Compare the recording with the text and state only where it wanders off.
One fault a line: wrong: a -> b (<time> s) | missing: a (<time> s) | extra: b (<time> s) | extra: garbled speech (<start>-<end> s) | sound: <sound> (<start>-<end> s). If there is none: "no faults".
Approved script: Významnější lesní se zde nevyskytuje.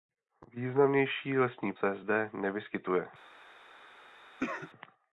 sound: cough (4.4-4.7 s)